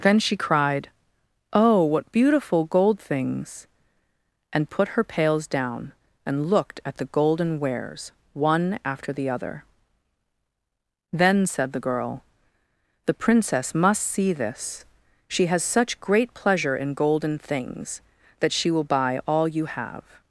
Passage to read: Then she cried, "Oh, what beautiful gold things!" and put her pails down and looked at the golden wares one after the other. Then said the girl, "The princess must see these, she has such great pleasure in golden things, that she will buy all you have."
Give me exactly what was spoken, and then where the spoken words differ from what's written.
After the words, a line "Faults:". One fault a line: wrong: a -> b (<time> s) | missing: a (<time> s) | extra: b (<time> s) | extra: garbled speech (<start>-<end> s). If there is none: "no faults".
Then she cried, "Oh, what beautiful gold things!" and put her pails down and looked at the golden wares one after the other. Then said the girl, "The princess must see this, she has such great pleasure in golden things, that she will buy all you have."
Faults:
wrong: these -> this (14.3 s)